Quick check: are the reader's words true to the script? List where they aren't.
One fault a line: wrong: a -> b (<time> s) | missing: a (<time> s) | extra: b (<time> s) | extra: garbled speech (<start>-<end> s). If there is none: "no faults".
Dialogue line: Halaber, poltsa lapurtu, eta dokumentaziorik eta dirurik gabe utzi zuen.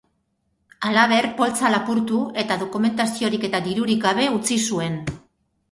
no faults